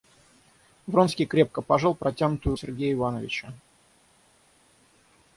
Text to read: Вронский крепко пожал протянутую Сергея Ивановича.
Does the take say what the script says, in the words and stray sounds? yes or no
yes